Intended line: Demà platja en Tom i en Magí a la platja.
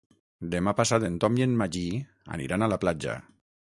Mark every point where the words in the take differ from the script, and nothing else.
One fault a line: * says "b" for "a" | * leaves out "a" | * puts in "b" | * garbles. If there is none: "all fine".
* says "passat" for "platja"
* puts in "aniran"